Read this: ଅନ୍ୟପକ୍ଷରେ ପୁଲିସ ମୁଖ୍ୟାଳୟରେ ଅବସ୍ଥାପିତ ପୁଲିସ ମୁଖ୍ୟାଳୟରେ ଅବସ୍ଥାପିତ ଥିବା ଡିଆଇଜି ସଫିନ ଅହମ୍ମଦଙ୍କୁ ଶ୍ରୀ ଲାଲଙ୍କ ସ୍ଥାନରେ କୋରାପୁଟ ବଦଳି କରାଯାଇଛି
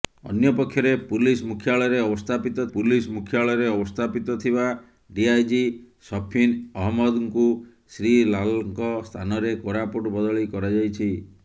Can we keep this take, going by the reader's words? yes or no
yes